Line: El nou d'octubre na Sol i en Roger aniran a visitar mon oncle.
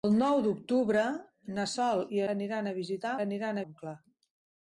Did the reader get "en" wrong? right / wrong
wrong